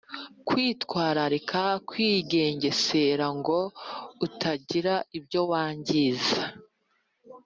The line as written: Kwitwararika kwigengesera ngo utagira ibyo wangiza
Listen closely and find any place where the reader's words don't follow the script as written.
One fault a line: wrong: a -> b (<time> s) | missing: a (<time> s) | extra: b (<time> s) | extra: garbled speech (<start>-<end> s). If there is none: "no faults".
no faults